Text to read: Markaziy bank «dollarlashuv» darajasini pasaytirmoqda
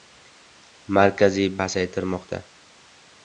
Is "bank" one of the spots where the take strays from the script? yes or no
yes